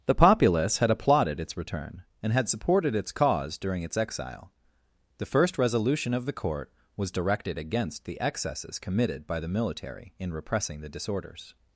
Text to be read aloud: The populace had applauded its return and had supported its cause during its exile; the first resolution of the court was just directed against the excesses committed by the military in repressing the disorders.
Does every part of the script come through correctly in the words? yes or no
no